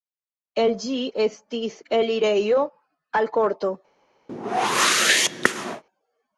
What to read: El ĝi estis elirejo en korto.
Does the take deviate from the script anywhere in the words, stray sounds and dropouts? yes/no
yes